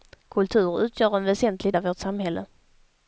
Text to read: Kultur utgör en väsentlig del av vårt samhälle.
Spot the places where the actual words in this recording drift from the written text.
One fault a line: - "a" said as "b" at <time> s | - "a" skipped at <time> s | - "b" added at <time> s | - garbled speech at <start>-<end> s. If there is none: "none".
- "del" skipped at 1.7 s